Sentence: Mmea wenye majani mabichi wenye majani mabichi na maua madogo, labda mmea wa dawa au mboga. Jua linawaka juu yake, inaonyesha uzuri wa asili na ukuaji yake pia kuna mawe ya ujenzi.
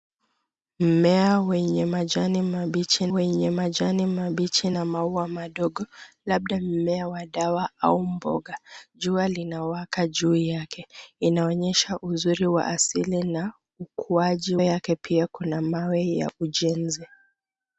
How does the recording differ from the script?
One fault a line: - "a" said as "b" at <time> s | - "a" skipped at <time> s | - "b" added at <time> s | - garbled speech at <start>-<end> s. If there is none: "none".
none